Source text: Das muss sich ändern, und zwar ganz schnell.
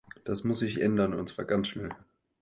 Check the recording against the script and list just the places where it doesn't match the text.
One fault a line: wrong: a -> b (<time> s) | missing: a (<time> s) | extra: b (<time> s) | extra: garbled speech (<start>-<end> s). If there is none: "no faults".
no faults